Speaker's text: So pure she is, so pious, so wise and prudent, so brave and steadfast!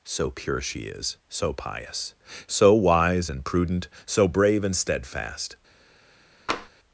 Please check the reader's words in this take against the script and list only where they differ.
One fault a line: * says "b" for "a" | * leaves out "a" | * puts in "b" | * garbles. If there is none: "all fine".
all fine